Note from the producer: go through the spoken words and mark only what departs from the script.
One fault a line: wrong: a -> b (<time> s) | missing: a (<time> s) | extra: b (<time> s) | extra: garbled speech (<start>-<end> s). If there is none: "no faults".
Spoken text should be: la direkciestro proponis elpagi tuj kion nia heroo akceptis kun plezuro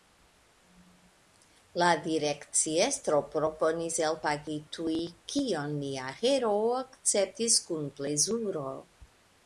no faults